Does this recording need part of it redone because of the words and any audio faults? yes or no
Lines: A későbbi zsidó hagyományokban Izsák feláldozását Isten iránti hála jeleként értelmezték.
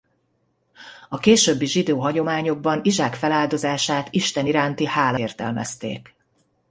yes